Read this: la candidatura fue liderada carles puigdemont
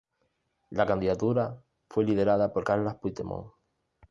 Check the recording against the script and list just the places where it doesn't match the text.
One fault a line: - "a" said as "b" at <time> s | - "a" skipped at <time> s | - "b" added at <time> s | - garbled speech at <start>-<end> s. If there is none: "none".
- "por" added at 2.5 s